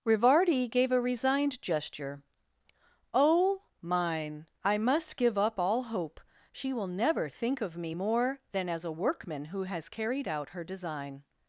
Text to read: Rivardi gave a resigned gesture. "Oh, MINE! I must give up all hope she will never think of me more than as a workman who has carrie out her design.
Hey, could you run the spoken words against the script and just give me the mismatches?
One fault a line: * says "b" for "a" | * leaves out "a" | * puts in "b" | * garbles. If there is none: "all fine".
* says "carried" for "carrie"